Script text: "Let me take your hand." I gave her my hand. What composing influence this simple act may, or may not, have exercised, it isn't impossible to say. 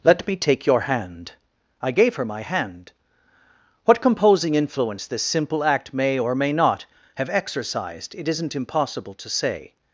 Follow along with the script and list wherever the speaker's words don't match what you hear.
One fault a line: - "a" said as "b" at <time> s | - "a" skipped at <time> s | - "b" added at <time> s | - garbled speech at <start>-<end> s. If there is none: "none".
none